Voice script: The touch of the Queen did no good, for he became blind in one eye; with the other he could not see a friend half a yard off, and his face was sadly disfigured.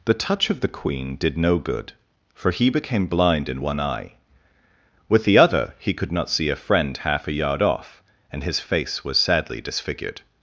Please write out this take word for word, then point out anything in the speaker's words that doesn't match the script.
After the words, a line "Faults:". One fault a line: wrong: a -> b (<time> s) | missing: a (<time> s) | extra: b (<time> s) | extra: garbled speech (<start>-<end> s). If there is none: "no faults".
The touch of the Queen did no good, for he became blind in one eye; with the other he could not see a friend half a yard off, and his face was sadly disfigured.
Faults:
no faults